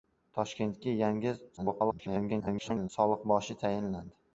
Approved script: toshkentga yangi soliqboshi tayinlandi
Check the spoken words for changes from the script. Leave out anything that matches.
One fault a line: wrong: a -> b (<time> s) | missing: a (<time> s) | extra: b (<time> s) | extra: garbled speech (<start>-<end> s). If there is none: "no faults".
extra: garbled speech (1.6-2.9 s)